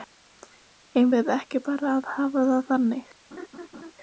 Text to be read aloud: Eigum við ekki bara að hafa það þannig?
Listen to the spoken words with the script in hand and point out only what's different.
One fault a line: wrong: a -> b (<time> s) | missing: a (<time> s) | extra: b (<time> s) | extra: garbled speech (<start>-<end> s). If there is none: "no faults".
no faults